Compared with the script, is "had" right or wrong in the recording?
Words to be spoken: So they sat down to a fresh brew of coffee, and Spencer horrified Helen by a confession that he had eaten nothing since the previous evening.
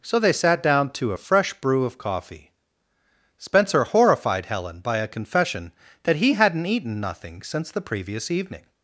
wrong